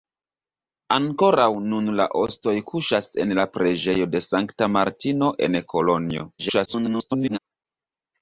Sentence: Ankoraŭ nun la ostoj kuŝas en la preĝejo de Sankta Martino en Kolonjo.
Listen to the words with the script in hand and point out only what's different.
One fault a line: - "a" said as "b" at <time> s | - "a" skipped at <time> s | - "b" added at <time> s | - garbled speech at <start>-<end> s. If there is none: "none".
- garbled speech at 6.4-7.4 s